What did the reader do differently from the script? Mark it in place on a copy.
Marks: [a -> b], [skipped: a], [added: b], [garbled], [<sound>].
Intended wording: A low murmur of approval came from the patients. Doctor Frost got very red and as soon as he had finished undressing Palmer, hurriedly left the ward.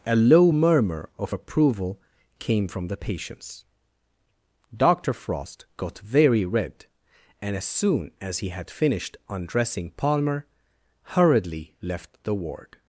A low murmur of approval came from the patients. Doctor Frost got very red and as soon as he had finished undressing Palmer, hurriedly left the ward.